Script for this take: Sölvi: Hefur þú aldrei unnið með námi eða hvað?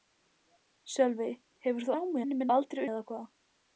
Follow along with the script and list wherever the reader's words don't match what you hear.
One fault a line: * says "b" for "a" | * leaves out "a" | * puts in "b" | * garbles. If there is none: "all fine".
* says "námi" for "aldrei"
* says "aldrei" for "námi"